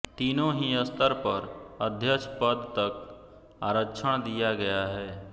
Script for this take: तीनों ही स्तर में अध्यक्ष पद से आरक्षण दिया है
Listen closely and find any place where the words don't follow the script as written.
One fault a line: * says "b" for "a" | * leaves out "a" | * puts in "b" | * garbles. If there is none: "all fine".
* says "पर" for "में"
* says "तक" for "से"
* puts in "गया"